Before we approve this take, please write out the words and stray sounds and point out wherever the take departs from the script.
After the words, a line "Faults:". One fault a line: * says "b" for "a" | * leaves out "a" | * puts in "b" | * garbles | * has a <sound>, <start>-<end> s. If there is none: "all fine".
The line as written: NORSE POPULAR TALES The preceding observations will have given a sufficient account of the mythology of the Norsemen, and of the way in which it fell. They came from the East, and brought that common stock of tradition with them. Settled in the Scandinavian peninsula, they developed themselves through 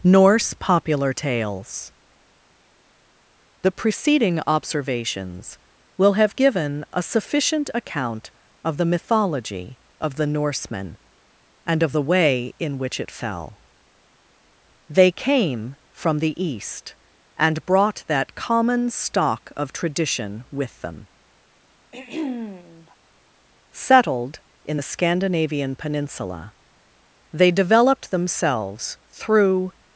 NORSE POPULAR TALES The preceding observations will have given a sufficient account of the mythology of the Norsemen, and of the way in which it fell. They came from the East, and brought that common stock of tradition with them. Settled in the Scandinavian peninsula, they developed themselves through
Faults:
* has a throat clearing, 21.9-23.0 s